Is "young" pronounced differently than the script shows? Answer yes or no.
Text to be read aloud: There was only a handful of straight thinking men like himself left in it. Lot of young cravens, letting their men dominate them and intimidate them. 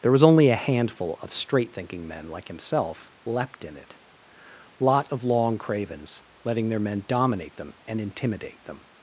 yes